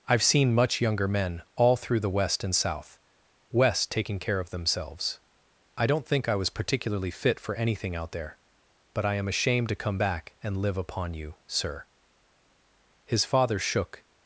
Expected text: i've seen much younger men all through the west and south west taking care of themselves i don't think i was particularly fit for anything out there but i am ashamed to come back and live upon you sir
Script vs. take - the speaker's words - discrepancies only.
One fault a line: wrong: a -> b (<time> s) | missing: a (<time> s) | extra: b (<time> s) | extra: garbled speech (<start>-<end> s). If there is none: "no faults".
extra: his father shook (13.0 s)